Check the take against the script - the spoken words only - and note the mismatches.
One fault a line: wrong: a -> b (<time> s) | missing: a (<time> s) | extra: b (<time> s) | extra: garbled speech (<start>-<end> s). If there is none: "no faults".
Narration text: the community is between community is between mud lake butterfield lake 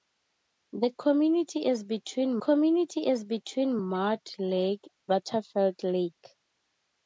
no faults